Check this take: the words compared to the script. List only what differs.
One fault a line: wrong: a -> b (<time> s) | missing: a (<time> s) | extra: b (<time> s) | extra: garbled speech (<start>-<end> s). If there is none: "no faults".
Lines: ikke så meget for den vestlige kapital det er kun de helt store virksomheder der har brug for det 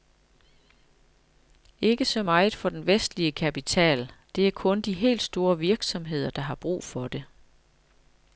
no faults